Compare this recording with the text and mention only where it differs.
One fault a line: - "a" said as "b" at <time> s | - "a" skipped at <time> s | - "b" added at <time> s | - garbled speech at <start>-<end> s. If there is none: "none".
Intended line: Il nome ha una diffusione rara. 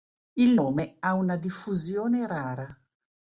none